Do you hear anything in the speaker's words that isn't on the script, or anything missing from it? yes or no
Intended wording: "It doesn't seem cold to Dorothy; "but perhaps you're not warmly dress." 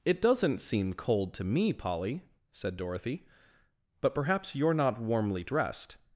yes